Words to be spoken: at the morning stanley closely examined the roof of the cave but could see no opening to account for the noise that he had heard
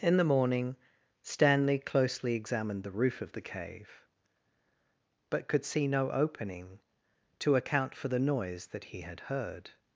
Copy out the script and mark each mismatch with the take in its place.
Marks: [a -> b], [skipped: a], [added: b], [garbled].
[at -> in] the morning stanley closely examined the roof of the cave but could see no opening to account for the noise that he had heard